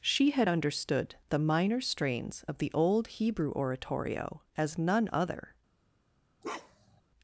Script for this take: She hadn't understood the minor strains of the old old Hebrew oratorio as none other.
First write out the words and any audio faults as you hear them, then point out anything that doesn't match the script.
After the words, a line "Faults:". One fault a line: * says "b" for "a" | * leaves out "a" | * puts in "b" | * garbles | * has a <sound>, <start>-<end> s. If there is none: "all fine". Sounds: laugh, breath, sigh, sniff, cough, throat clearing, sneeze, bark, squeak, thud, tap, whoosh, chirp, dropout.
She had understood the minor strains of the old Hebrew oratorio as none other.
Faults:
* says "had" for "hadn't"
* leaves out "old"
* has a bark, 6.4-7.0 s